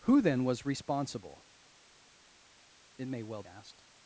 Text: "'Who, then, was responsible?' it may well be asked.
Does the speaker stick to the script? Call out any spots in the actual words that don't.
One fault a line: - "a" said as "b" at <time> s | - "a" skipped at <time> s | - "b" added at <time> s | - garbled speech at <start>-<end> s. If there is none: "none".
- "be" skipped at 3.4 s